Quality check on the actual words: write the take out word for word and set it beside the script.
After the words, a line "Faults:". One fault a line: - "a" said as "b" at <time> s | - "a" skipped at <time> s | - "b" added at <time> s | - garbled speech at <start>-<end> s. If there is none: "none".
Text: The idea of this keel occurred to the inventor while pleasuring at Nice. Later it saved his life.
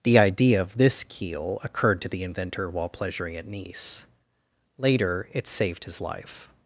The idea of this keel occurred to the inventor while pleasuring at Nice. Later it saved his life.
Faults:
none